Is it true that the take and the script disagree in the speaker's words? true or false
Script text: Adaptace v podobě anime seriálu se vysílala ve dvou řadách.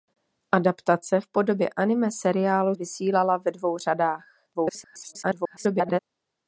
true